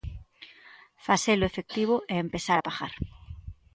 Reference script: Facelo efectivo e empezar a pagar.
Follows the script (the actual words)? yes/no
yes